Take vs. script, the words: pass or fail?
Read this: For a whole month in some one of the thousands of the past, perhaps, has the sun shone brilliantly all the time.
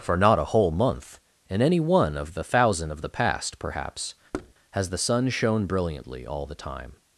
fail